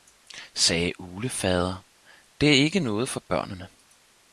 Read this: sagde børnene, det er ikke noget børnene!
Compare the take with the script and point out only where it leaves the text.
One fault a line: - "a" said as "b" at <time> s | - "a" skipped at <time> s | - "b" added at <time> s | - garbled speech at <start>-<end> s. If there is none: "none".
- "børnene" said as "uglefader" at 1.0 s
- "for" added at 3.1 s